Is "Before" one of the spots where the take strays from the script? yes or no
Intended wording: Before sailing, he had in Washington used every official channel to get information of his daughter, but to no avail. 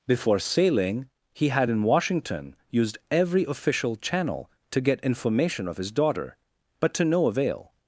no